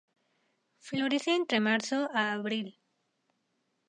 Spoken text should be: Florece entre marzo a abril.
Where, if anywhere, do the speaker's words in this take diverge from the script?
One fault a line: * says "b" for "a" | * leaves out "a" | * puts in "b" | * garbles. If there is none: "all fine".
all fine